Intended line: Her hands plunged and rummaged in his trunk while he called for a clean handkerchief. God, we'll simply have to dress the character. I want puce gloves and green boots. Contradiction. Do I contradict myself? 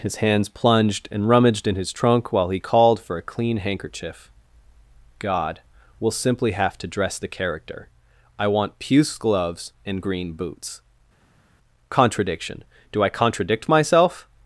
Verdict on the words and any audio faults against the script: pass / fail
fail